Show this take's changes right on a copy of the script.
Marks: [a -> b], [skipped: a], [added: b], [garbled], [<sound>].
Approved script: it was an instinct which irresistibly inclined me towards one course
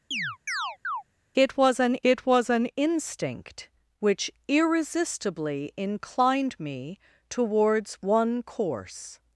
[chirp] it was an [added: it was an] instinct which irresistibly inclined me towards one course